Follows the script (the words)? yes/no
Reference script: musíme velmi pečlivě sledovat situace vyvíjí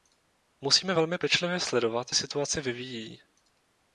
yes